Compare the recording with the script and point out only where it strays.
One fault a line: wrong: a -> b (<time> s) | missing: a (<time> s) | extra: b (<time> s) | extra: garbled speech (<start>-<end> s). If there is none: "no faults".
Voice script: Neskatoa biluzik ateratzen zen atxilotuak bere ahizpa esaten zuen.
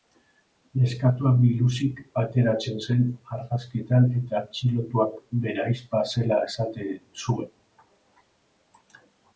extra: argazkietan eta (3.4 s)
extra: zela (6.2 s)